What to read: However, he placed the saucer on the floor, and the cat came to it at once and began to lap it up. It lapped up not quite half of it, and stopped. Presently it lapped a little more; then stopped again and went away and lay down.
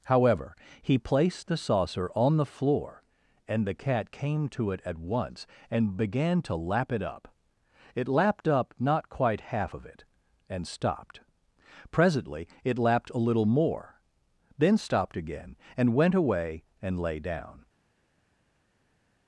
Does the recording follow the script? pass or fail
pass